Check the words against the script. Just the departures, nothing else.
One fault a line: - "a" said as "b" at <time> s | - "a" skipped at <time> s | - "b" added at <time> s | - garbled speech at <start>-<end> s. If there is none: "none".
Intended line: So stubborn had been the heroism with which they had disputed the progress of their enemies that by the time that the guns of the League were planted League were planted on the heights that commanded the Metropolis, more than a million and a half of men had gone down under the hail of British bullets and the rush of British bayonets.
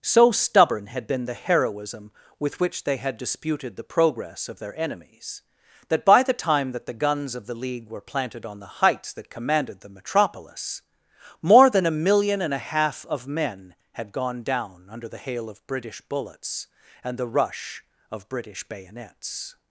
- "League were planted" skipped at 8.4 s